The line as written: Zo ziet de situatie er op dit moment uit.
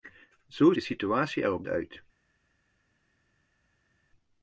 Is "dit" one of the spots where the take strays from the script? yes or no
yes